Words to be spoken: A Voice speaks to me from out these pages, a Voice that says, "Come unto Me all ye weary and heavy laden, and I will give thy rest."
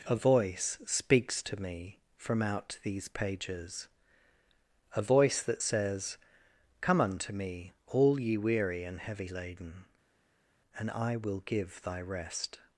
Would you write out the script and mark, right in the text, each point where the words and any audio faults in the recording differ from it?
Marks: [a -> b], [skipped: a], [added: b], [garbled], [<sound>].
A Voice speaks to me from out these pages, a Voice that says, "Come unto Me all ye weary and heavy laden, and I will give thy rest."